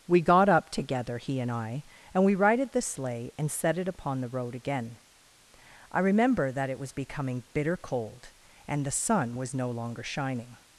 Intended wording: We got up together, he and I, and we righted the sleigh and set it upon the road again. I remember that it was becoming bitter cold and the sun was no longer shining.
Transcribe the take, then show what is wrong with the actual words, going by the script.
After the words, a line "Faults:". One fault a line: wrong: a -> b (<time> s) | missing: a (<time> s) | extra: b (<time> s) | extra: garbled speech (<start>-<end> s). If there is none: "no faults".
We got up together, he and I, and we righted the sleigh and set it upon the road again. I remember that it was becoming bitter cold and the sun was no longer shining.
Faults:
no faults